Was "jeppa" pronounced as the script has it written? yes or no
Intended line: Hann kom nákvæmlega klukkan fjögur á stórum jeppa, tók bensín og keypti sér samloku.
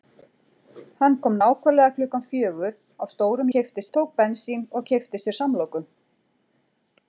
no